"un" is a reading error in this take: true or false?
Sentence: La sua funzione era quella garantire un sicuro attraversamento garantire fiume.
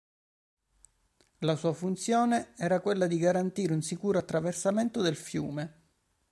false